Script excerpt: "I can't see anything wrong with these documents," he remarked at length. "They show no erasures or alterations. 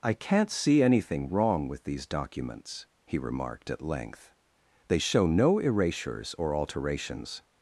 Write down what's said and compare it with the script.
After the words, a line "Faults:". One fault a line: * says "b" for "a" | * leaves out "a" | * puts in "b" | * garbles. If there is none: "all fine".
"I can't see anything wrong with these documents," he remarked at length. "They show no erasures or alterations.
Faults:
all fine